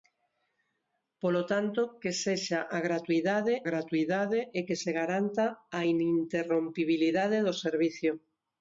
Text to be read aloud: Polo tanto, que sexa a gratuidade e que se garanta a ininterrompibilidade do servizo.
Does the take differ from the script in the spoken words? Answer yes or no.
yes